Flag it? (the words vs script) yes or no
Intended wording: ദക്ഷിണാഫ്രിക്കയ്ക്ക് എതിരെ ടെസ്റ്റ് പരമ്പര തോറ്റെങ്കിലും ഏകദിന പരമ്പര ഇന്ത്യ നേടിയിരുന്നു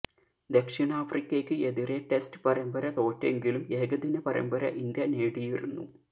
no